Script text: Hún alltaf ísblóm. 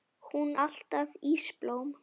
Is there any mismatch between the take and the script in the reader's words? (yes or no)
no